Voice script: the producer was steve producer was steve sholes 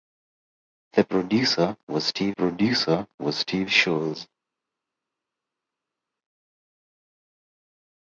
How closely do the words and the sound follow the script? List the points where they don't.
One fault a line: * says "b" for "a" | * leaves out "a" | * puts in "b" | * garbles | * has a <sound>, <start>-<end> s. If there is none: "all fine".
all fine